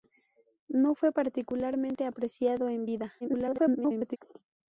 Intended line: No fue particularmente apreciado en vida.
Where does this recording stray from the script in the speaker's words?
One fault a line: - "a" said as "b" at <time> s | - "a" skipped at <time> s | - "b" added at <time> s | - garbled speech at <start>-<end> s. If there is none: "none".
- garbled speech at 3.2-4.2 s